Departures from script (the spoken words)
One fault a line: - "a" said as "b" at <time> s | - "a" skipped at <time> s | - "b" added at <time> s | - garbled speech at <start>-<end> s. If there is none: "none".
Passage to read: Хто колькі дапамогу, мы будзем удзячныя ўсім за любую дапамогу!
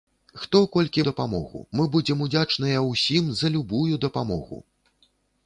none